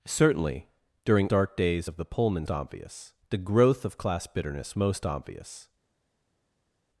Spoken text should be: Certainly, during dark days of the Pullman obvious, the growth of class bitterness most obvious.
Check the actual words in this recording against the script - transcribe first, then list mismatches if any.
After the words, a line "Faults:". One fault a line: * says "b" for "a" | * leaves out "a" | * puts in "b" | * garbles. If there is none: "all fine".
Certainly, during dark days of the Pullman obvious, the growth of class bitterness most obvious.
Faults:
all fine